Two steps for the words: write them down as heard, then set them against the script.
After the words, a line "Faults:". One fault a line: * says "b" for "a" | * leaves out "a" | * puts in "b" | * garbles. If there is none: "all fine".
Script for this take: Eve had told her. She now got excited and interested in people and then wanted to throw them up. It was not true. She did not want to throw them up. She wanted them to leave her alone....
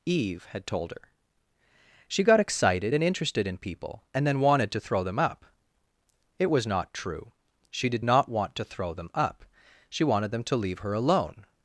Eve had told her. She got excited and interested in people and then wanted to throw them up. It was not true. She did not want to throw them up. She wanted them to leave her alone....
Faults:
* leaves out "now"